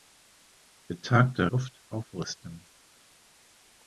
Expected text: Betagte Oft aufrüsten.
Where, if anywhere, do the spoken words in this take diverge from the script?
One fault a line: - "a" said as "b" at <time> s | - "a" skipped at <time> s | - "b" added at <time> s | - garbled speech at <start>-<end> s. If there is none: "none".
none